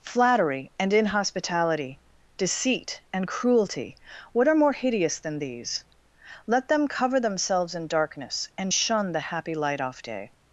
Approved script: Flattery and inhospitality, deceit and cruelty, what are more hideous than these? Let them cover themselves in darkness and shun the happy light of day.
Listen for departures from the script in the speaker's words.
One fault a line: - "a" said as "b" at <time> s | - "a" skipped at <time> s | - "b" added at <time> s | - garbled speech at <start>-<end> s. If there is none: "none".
- "of" said as "off" at 9.8 s